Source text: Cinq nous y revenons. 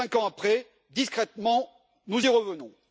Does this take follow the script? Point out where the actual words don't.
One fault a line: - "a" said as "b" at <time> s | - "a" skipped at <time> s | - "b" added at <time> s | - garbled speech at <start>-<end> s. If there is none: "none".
- "ans après discrètement" added at 0.1 s